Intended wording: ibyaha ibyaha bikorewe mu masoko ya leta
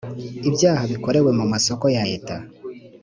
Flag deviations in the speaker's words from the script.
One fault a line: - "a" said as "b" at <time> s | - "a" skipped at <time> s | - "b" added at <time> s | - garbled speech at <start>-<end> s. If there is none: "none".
- "ibyaha" skipped at 0.8 s